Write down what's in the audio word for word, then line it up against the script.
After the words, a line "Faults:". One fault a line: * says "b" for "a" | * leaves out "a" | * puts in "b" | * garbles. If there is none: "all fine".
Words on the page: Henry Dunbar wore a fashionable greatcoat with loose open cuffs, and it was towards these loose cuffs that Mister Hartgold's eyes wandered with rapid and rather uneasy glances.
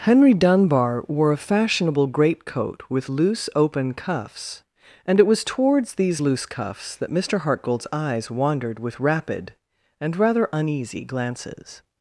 Henry Dunbar wore a fashionable greatcoat with loose open cuffs, and it was towards these loose cuffs that Mister Hartgold's eyes wandered with rapid and rather uneasy glances.
Faults:
all fine